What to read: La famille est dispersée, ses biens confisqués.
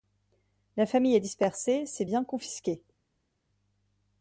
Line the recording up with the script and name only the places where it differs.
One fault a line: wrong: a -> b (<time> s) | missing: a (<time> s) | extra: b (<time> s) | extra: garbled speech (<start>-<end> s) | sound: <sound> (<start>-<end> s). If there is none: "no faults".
no faults